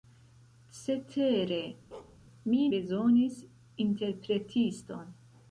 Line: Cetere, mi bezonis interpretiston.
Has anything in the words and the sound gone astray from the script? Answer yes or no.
yes